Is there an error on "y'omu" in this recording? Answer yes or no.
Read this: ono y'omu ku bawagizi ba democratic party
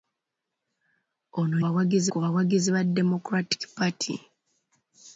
yes